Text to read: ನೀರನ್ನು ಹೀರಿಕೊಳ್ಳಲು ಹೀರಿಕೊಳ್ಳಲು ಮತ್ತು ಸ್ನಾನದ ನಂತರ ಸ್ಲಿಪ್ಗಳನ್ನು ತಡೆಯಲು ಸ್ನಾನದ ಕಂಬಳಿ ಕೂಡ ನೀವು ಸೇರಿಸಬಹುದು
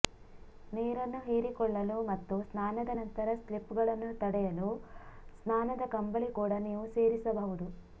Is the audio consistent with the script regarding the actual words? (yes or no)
no